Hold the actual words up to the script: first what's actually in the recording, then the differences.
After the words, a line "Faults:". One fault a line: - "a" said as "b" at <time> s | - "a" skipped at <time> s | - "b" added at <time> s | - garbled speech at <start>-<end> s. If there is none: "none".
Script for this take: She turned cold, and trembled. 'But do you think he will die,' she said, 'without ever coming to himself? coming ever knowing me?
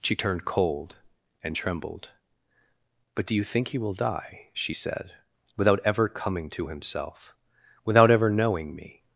She turned cold, and trembled. 'But do you think he will die,' she said, 'without ever coming to himself? without ever knowing me?
Faults:
- "coming" said as "without" at 7.9 s